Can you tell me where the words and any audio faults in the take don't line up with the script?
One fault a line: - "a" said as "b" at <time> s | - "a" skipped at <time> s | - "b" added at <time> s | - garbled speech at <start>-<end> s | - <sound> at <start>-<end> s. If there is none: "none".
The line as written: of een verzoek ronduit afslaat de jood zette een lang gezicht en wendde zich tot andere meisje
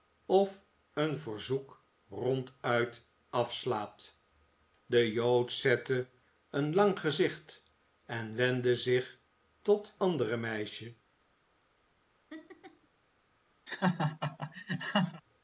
- laugh at 12.3-12.9 s
- laugh at 13.7-15.2 s